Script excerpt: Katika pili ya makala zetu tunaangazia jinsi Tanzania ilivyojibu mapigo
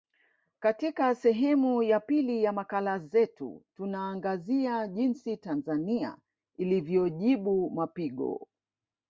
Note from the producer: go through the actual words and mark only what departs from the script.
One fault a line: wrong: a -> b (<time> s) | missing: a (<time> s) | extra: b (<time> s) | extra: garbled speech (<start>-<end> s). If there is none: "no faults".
extra: sehemu ya (1.1 s)